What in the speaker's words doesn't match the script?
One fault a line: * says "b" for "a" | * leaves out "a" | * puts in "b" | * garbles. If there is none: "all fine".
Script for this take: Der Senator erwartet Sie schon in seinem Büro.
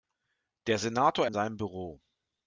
* leaves out "erwartet Sie schon"